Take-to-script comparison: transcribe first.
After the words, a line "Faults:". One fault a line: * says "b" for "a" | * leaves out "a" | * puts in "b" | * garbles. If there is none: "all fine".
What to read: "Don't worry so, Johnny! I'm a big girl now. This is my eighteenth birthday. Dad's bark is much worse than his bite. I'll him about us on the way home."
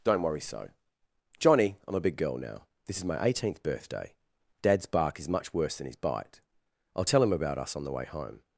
"Don't worry so, Johnny! I'm a big girl now. This is my eighteenth birthday. Dad's bark is much worse than his bite. I'll tell him about us on the way home."
Faults:
* puts in "tell"